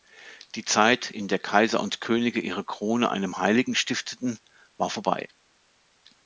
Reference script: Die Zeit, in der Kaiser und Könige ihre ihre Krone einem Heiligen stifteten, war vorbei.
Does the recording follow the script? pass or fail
fail